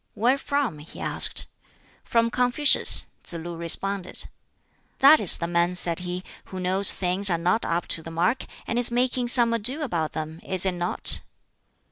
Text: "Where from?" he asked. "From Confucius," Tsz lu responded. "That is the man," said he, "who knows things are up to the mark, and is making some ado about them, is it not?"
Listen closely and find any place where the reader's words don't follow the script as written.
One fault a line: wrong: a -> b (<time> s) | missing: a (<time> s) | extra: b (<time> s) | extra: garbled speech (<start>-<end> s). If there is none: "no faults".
extra: not (7.4 s)